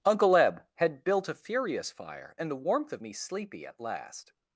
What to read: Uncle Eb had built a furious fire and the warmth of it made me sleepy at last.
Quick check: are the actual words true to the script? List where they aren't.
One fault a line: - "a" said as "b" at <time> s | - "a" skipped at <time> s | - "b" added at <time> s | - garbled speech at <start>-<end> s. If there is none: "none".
- "it made" skipped at 3.0 s